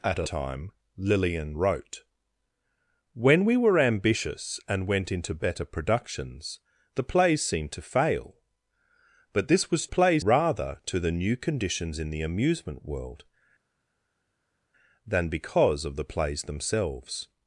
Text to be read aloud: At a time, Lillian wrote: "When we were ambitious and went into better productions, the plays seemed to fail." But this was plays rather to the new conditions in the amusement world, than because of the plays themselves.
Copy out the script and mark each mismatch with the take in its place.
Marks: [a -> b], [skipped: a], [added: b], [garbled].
At a time, Lillian wrote: "When we were ambitious and went into better productions, the plays seemed to fail." But this was plays rather to the new conditions in the amusement world, than because of the plays themselves.